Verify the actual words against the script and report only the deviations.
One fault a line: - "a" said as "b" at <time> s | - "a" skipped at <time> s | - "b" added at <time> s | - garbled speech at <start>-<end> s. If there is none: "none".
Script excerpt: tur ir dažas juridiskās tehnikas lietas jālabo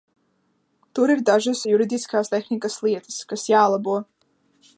- "kas" added at 3.3 s